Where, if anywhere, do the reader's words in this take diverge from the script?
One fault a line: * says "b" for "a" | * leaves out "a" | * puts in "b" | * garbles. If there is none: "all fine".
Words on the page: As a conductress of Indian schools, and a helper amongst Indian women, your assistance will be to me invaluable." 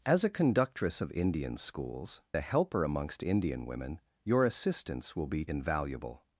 * leaves out "and"
* leaves out "to me"